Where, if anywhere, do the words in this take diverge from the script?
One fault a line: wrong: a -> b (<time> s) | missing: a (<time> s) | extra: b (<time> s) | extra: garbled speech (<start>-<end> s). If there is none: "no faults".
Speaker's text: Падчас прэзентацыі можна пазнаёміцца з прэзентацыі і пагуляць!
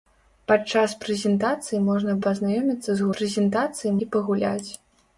no faults